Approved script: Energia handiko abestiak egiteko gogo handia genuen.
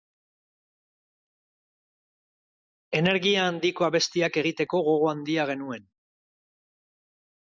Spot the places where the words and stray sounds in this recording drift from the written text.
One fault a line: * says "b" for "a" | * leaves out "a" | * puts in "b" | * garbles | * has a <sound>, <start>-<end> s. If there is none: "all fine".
all fine